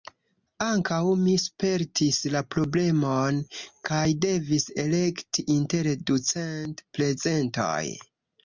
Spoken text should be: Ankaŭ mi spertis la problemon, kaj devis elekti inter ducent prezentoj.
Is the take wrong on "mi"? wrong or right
right